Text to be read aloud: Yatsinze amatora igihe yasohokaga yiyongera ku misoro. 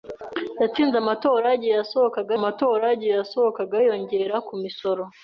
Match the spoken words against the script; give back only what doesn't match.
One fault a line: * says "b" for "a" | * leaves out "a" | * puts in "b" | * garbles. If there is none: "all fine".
* puts in "amatora igihe yasohokaga"